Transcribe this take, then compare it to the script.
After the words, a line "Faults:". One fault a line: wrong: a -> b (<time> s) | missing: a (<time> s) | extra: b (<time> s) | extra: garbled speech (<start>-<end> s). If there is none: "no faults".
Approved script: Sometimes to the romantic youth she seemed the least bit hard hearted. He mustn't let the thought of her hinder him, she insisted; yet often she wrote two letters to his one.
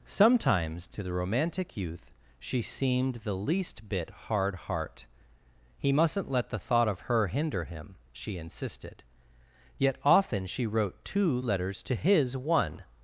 Sometimes to the romantic youth she seemed the least bit hard heart. He mustn't let the thought of her hinder him, she insisted; yet often she wrote two letters to his one.
Faults:
wrong: hearted -> heart (4.5 s)